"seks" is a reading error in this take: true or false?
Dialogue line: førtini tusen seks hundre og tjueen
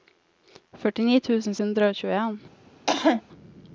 true